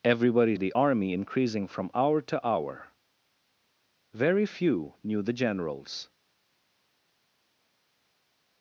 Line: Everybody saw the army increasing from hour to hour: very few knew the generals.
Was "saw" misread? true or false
true